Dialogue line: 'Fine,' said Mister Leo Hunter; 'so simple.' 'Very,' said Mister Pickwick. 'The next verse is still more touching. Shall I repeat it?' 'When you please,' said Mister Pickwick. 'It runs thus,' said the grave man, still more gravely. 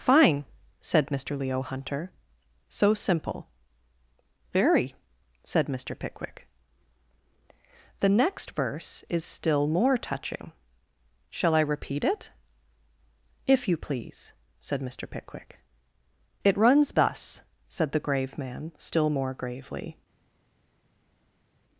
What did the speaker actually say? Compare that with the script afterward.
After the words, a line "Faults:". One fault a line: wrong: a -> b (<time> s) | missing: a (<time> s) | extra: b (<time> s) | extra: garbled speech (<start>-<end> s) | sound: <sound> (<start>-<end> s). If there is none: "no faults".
'Fine,' said Mister Leo Hunter; 'so simple.' 'Very,' said Mister Pickwick. 'The next verse is still more touching. Shall I repeat it?' 'If you please,' said Mister Pickwick. 'It runs thus,' said the grave man, still more gravely.
Faults:
wrong: When -> If (13.4 s)